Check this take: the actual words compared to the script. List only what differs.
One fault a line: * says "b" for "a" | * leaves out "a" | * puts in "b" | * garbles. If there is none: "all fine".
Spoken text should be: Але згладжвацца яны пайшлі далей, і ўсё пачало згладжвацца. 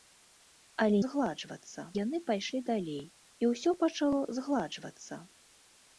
all fine